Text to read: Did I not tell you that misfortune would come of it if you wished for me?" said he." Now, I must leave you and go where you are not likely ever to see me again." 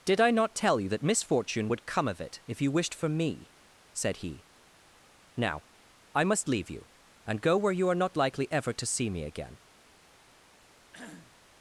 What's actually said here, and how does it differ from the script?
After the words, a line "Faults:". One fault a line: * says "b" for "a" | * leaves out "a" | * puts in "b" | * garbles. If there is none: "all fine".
Did I not tell you that misfortune would come of it if you wished for me?" said he." Now, I must leave you and go where you are not likely ever to see me again."
Faults:
all fine